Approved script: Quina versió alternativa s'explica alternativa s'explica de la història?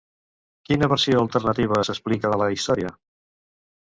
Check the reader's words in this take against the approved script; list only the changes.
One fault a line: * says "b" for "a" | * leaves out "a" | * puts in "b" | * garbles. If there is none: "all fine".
* leaves out "alternativa s'explica"